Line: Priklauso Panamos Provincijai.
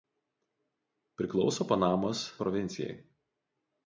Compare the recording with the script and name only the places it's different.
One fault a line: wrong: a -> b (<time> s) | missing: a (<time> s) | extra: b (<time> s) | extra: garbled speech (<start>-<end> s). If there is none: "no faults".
no faults